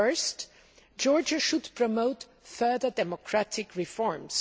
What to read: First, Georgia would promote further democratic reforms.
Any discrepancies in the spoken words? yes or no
yes